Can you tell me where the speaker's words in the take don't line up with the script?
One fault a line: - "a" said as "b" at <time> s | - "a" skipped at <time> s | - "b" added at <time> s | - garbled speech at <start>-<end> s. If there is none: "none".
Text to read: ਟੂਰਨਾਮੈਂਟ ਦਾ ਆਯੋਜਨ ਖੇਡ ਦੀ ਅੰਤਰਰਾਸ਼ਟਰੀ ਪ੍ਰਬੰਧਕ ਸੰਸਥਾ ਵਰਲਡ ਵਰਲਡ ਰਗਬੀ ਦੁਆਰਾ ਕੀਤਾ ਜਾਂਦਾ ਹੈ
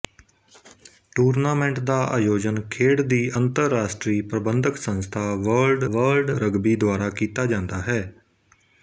none